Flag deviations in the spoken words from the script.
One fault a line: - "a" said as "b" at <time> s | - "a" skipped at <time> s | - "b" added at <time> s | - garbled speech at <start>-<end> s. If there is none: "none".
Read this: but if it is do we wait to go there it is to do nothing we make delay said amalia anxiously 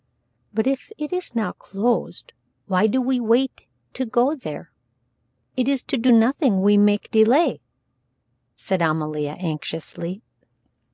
- "now closed why" added at 1.4 s